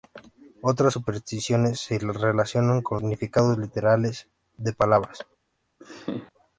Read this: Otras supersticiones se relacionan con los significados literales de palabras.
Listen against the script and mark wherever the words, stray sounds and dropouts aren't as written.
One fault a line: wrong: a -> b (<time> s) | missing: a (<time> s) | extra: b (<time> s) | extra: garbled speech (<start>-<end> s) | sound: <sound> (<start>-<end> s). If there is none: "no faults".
missing: los (3.0 s)
sound: laugh (5.8-6.3 s)